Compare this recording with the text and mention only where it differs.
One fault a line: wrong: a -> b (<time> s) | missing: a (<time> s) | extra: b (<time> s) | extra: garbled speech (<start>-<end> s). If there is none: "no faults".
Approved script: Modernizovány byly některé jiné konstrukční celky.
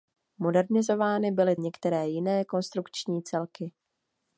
no faults